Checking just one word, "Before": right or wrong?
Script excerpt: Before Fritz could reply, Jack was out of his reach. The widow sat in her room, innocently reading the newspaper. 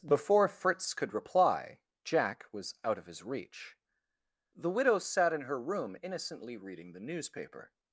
right